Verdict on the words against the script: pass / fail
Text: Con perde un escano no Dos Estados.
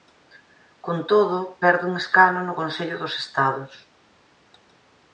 fail